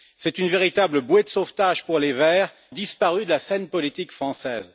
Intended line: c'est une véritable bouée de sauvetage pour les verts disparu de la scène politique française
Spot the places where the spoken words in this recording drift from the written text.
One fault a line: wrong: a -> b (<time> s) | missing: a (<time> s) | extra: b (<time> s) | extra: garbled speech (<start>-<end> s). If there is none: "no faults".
no faults